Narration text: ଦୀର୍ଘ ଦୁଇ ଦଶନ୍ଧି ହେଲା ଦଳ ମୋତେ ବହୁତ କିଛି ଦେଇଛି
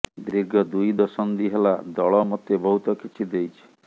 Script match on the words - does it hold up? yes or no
yes